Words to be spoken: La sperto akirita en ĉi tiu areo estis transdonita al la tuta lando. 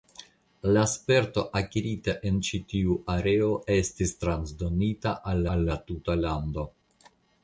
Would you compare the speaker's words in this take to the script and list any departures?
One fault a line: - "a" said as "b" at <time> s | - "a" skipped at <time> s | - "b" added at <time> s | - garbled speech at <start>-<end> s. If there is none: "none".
- "al" added at 5.6 s